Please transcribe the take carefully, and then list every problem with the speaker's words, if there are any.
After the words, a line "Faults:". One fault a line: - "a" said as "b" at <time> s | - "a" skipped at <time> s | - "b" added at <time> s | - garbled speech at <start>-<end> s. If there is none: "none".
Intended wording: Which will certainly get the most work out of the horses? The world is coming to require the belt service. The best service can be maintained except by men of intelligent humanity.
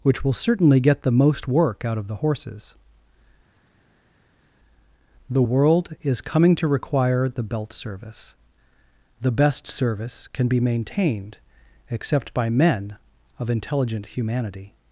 Which will certainly get the most work out of the horses? The world is coming to require the belt service. The best service can be maintained except by men of intelligent humanity.
Faults:
none